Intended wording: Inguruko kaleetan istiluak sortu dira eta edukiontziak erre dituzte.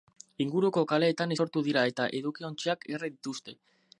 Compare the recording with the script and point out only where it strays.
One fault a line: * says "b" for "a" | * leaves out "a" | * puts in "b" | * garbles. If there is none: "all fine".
* leaves out "istiluak"